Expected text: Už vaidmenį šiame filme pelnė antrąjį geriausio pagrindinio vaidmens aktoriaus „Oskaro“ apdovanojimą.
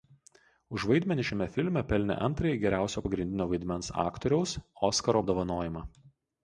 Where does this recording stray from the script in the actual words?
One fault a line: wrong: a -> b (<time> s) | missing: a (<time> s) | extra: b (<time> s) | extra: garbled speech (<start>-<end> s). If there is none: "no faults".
no faults